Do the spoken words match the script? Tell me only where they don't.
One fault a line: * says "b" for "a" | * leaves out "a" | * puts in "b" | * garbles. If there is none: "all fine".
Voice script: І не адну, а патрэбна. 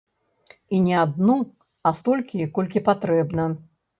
* puts in "столькі колькі"